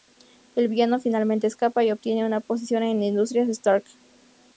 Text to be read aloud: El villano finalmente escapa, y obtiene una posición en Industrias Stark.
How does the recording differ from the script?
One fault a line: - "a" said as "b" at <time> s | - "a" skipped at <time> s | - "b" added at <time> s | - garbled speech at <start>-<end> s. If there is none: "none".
none